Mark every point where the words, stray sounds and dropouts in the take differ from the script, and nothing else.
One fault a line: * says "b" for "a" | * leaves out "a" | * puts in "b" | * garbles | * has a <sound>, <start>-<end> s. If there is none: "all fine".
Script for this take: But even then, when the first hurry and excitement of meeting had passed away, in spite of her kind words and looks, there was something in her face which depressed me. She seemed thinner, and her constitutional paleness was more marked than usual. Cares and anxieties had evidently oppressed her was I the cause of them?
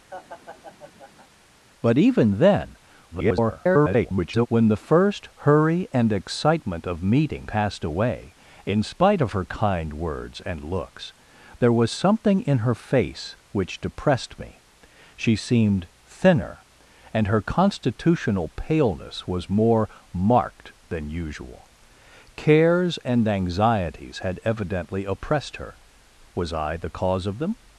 * has a laugh, 0.1-1.3 s
* garbles
* leaves out "had"